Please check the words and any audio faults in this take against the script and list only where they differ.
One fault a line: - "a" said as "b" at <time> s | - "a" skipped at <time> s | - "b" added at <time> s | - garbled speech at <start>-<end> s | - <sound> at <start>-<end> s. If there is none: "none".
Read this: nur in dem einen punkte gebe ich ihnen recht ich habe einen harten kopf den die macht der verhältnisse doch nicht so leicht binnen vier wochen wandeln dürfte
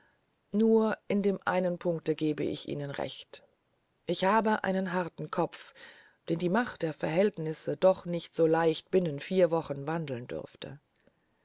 none